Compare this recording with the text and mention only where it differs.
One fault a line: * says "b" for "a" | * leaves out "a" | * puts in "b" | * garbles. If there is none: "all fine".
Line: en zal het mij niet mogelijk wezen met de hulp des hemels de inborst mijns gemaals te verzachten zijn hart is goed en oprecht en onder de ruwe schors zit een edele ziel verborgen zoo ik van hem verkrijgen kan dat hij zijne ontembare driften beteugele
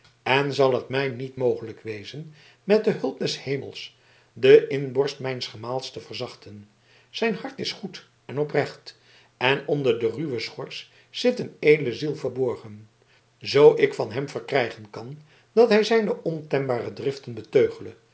all fine